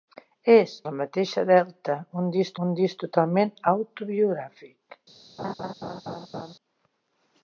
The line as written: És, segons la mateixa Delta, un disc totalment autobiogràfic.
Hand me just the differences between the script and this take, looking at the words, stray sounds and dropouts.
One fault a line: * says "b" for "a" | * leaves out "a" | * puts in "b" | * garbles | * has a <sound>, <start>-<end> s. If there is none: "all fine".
* leaves out "segons"
* puts in "un disc"
* has a laugh, 5.4-6.5 s